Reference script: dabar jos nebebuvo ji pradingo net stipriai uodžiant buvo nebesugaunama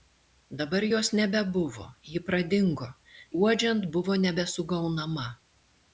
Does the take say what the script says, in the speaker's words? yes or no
no